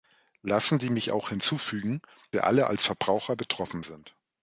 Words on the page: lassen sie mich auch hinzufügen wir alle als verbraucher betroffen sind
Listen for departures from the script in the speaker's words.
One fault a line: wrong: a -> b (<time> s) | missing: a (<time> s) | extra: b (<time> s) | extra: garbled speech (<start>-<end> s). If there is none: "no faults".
no faults